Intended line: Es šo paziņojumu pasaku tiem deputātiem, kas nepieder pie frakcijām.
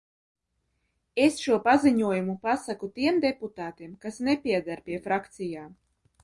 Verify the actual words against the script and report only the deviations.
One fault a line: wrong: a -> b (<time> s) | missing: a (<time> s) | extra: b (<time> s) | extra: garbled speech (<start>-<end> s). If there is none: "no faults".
no faults